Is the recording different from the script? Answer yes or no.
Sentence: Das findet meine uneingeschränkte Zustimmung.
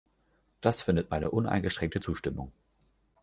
no